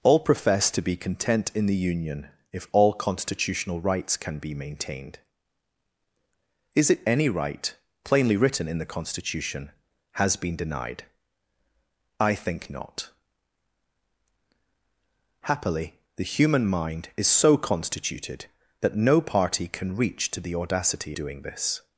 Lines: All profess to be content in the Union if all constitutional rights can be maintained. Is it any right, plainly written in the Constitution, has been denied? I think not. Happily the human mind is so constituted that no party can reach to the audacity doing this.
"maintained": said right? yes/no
yes